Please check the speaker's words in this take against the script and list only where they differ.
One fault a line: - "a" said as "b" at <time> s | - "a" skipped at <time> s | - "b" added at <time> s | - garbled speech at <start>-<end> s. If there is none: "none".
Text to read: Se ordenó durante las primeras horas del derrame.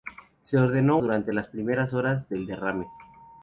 none